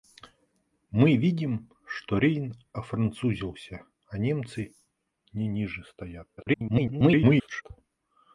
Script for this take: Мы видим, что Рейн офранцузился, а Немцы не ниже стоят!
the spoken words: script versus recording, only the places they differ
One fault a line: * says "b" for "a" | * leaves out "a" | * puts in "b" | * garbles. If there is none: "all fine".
* garbles